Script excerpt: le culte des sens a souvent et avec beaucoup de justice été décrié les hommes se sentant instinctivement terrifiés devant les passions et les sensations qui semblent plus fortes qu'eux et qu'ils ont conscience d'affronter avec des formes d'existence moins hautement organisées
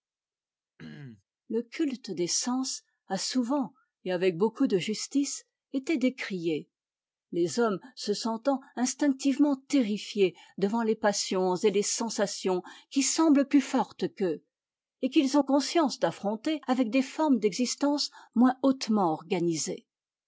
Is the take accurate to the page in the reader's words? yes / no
yes